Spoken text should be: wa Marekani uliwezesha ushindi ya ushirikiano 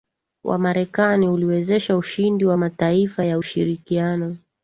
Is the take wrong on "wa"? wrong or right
right